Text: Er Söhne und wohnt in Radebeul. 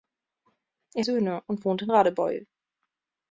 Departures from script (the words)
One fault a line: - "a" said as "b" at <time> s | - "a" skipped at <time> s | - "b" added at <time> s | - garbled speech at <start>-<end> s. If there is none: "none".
none